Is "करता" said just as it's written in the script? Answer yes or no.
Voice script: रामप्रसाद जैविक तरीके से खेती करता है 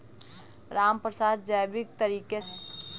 no